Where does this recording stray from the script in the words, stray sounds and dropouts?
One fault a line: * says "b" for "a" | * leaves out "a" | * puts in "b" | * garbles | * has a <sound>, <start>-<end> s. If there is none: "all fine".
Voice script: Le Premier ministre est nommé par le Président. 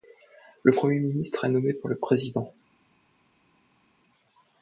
all fine